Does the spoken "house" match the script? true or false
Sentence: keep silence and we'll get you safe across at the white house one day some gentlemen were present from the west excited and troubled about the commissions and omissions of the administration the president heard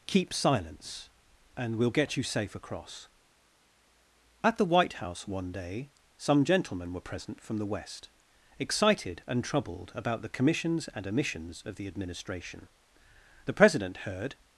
true